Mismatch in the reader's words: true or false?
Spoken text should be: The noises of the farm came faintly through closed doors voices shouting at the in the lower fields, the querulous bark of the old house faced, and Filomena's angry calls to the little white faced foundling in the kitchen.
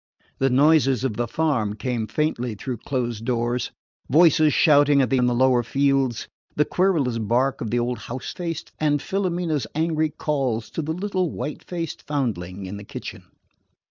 false